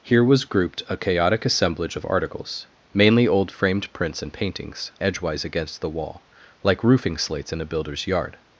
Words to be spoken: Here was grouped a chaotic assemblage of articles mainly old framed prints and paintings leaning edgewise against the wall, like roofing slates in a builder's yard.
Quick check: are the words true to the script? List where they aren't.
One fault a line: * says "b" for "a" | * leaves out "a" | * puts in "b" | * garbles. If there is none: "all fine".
* leaves out "leaning"